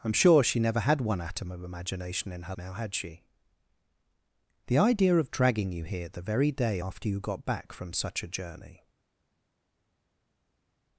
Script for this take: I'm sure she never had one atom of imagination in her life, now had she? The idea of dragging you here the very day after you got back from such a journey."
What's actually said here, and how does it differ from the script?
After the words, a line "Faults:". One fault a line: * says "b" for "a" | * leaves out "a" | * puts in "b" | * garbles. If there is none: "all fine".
I'm sure she never had one atom of imagination in her now had she? The idea of dragging you here the very day after you got back from such a journey."
Faults:
* leaves out "life"